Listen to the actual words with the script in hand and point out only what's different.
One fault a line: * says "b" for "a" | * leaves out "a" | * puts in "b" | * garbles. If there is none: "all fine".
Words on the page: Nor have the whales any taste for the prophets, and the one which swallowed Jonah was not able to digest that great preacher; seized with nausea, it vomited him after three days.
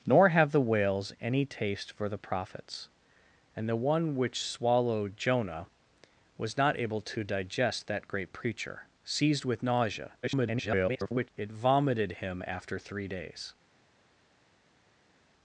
* garbles